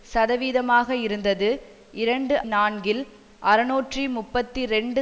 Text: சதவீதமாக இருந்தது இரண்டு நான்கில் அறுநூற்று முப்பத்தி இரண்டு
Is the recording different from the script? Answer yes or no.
no